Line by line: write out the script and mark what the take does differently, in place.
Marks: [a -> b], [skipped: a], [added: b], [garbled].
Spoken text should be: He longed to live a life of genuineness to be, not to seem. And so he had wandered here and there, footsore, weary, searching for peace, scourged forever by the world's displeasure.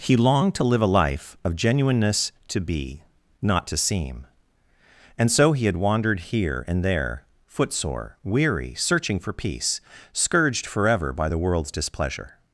He longed to live a life of genuineness to be, not to seem. And so he had wandered here and there, footsore, weary, searching for peace, scourged forever by the world's displeasure.